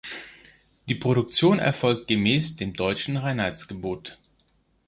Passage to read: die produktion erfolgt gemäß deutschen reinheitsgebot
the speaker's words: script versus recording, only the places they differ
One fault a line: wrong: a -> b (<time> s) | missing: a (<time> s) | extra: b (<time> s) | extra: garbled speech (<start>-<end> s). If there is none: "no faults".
extra: dem (2.6 s)